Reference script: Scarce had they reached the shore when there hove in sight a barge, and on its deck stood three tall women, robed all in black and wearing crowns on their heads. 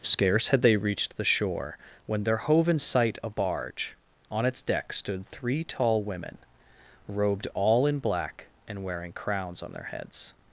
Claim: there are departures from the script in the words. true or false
true